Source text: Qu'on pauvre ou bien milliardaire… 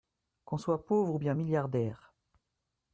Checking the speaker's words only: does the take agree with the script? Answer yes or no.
no